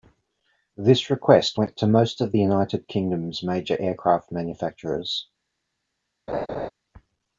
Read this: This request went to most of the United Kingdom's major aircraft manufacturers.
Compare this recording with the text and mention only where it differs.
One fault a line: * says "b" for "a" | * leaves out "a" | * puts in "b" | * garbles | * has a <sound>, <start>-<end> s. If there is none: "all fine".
* has a laugh, 6.3-6.7 s